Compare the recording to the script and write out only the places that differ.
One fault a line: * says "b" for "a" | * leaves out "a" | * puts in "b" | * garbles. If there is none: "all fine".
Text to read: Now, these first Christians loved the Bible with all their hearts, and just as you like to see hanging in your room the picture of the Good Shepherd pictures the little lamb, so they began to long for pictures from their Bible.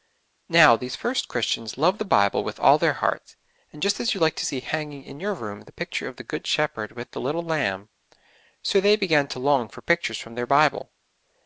* says "with" for "pictures"